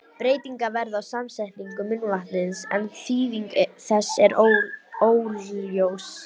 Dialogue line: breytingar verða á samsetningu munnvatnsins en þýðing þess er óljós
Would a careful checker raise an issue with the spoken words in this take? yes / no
no